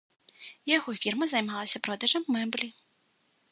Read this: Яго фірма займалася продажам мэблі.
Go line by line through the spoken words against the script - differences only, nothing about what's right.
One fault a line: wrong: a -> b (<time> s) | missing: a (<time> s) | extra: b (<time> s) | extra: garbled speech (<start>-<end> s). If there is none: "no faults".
no faults